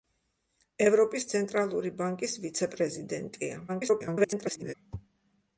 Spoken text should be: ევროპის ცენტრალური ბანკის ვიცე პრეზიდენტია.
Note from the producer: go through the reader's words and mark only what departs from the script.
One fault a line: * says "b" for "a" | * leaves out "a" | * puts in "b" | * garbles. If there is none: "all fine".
* garbles